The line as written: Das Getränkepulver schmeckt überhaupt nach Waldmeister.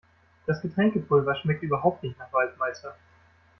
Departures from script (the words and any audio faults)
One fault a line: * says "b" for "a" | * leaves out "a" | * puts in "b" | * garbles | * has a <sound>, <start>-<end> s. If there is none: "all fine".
* puts in "nicht"